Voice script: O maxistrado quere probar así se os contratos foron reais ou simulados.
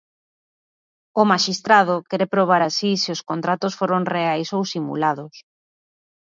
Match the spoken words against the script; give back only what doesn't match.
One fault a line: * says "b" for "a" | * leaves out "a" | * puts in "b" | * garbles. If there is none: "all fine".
all fine